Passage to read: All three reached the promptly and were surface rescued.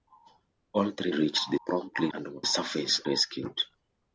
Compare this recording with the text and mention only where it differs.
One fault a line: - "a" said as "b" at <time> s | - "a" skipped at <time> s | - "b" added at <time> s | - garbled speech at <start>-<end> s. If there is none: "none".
none